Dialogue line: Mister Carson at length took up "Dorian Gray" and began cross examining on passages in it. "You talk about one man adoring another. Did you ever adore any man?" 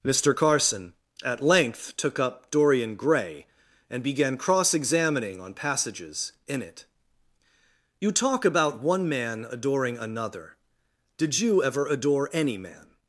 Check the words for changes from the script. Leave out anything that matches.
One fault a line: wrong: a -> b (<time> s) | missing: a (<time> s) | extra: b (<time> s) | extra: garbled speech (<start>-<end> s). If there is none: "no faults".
no faults